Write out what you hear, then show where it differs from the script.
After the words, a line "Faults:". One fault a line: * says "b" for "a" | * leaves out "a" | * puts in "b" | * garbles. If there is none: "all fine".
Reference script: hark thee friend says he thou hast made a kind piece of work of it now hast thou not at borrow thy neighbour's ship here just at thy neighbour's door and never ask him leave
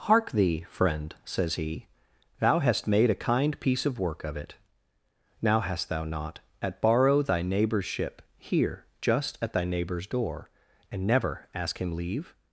hark thee friend says he thou hast made a kind piece of work of it now hast thou not at borrow thy neighbour's ship here just at thy neighbour's door and never ask him leave
Faults:
all fine